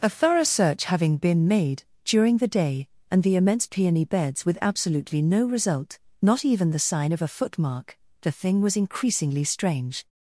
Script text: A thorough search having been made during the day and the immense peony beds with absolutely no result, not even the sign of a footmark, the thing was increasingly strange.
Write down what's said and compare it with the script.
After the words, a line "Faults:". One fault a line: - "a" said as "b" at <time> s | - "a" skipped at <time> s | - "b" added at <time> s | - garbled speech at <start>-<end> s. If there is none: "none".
A thorough search having been made during the day and the immense peony beds with absolutely no result, not even the sign of a footmark, the thing was increasingly strange.
Faults:
none